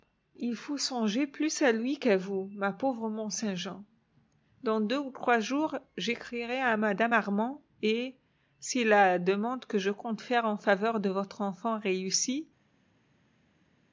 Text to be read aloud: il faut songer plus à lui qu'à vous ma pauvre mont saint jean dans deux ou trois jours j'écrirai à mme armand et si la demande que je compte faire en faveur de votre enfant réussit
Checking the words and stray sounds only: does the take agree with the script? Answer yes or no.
yes